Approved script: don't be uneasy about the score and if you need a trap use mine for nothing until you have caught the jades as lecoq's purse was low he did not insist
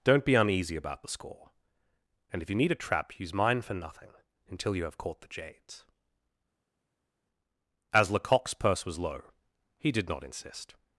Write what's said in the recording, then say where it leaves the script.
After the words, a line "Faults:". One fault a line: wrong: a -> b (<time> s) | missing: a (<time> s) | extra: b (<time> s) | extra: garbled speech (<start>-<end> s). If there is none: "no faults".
don't be uneasy about the score and if you need a trap use mine for nothing until you have caught the jades as lecoq's purse was low he did not insist
Faults:
no faults